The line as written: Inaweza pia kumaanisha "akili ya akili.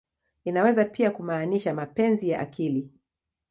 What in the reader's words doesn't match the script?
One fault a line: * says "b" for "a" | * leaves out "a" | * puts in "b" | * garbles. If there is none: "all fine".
* says "mapenzi" for "akili"